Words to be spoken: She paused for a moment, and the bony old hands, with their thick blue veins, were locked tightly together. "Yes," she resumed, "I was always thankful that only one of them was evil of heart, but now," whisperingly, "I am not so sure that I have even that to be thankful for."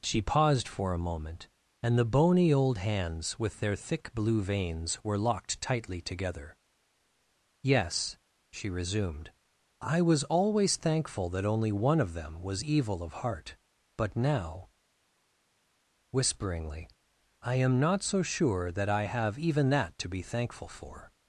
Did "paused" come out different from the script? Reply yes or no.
no